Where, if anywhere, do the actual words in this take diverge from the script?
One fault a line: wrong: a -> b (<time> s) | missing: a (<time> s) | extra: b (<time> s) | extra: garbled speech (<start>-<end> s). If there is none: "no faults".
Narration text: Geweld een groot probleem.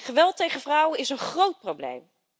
extra: tegen vrouwen is (0.4 s)